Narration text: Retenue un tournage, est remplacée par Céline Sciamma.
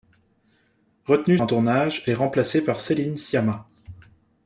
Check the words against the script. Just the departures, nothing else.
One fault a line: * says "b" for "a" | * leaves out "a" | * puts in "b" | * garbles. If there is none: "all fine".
all fine